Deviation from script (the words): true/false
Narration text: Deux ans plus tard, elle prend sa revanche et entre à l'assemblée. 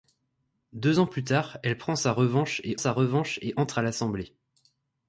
true